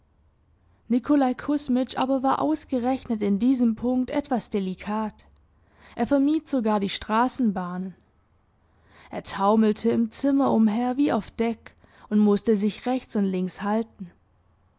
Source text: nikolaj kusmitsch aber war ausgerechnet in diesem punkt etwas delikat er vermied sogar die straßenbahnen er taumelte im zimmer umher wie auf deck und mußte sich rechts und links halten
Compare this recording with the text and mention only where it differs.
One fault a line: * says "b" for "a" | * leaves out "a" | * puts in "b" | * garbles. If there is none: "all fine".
all fine